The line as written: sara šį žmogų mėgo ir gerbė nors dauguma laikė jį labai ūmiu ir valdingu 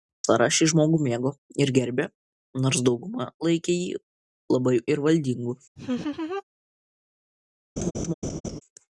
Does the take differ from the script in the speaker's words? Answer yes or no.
yes